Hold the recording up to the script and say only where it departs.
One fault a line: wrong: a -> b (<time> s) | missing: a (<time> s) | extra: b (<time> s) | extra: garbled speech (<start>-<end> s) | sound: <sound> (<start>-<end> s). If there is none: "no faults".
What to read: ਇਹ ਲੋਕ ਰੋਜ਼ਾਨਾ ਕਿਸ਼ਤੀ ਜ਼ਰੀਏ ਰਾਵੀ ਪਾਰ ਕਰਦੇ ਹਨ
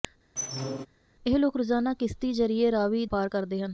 sound: squeak (0.4-0.9 s)